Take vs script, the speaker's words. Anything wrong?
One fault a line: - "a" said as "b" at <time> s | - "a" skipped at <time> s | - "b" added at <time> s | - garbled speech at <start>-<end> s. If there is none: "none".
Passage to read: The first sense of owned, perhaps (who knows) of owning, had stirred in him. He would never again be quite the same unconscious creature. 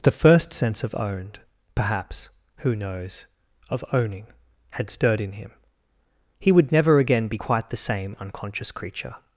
none